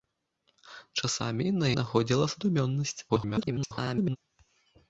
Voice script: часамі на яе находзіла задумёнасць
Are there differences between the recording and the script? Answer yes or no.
yes